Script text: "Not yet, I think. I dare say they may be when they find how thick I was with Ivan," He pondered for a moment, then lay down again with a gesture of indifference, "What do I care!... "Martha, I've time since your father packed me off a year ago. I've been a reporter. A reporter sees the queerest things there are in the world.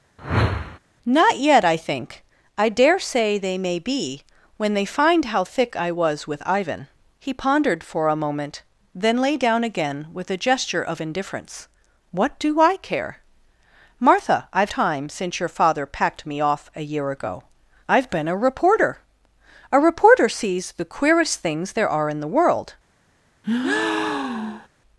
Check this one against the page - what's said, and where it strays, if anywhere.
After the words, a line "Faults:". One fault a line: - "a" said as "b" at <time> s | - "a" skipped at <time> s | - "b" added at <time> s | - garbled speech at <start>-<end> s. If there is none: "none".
"Not yet, I think. I dare say they may be when they find how thick I was with Ivan," He pondered for a moment, then lay down again with a gesture of indifference, "What do I care!... "Martha, I've time since your father packed me off a year ago. I've been a reporter. A reporter sees the queerest things there are in the world.
Faults:
none